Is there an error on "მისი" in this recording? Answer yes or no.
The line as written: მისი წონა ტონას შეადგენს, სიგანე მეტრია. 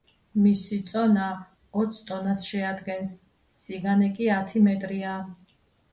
no